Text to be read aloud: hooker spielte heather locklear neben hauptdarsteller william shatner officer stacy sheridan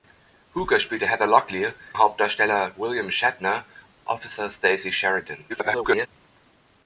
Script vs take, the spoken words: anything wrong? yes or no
yes